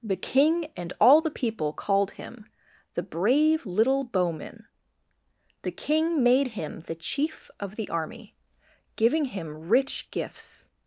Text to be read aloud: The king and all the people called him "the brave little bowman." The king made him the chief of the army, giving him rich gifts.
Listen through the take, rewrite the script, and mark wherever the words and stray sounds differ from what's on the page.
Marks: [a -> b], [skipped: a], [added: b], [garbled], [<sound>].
The king and all the people called him "the brave little bowman." The king made him the chief of the army, giving him rich gifts.